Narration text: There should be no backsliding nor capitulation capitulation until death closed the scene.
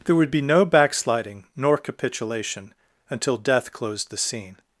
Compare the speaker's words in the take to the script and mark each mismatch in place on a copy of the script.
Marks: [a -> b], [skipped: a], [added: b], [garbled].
There [should -> would] be no backsliding nor capitulation [skipped: capitulation] until death closed the scene.